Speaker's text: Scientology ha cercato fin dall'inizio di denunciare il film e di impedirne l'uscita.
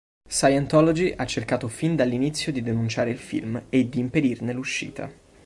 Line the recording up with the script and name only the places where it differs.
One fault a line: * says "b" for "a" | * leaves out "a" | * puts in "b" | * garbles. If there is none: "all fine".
all fine